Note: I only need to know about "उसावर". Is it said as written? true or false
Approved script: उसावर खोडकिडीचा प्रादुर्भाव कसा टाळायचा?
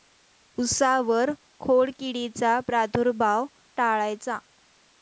true